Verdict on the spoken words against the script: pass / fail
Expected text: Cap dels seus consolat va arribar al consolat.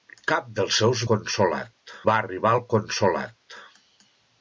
pass